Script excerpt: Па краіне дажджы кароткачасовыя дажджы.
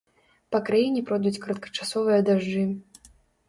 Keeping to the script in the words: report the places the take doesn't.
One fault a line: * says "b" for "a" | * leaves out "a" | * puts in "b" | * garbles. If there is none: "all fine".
* says "пройдуць" for "дажджы"